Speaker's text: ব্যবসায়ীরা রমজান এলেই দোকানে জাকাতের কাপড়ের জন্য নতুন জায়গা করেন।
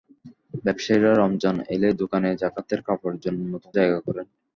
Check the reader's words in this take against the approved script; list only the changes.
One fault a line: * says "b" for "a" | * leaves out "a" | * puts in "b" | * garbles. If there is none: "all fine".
all fine